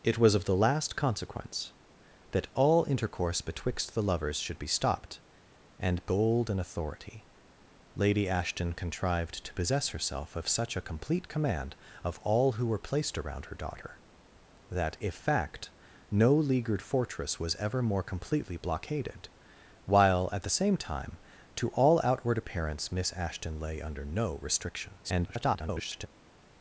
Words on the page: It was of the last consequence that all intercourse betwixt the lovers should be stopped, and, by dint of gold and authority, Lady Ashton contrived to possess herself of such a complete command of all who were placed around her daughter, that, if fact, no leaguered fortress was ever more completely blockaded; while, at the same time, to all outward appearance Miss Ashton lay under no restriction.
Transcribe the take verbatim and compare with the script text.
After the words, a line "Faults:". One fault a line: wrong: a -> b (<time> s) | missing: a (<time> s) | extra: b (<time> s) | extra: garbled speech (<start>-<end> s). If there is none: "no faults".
It was of the last consequence that all intercourse betwixt the lovers should be stopped, and, gold and authority, Lady Ashton contrived to possess herself of such a complete command of all who were placed around her daughter, that, if fact, no leaguered fortress was ever more completely blockaded; while, at the same time, to all outward appearance Miss Ashton lay under no restriction. [garbled]
Faults:
missing: by dint of (6.0 s)
extra: garbled speech (25.0-26.1 s)